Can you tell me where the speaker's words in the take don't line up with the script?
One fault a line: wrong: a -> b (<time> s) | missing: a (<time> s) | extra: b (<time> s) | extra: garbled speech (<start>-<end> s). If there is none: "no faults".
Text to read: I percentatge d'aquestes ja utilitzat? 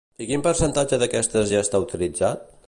extra: quin (0.3 s)
extra: està (1.7 s)